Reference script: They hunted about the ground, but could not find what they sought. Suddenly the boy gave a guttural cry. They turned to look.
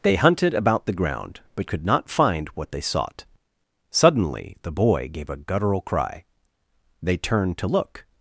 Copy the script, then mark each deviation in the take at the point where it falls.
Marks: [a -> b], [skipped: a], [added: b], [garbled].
They hunted about the ground, but could not find what they sought. Suddenly the boy gave a guttural cry. They turned to look.